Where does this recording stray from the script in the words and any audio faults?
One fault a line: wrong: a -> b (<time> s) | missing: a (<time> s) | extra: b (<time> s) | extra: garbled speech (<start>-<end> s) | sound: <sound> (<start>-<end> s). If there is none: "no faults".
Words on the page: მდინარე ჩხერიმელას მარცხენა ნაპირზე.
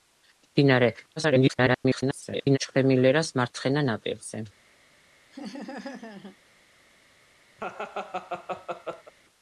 extra: garbled speech (1.2-2.6 s)
sound: laugh (5.3-6.4 s)
sound: laugh (7.6-9.1 s)